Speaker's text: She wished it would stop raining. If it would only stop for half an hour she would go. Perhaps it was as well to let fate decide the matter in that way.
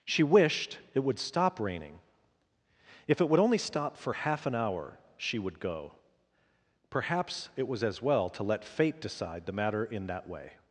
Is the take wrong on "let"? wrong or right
right